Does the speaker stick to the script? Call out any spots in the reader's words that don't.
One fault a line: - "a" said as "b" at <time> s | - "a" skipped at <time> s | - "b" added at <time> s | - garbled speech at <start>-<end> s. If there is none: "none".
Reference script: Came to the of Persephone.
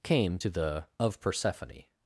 none